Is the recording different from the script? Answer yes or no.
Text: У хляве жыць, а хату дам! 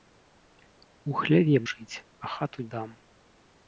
no